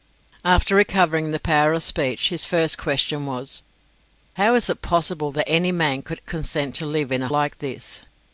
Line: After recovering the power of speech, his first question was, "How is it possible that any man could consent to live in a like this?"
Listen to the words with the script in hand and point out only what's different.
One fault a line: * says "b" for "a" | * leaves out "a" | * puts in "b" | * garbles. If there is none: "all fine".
all fine